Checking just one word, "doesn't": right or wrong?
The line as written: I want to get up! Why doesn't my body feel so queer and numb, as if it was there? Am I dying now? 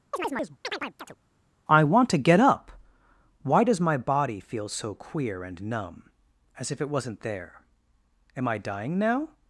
wrong